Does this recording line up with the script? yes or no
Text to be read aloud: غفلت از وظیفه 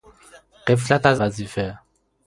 yes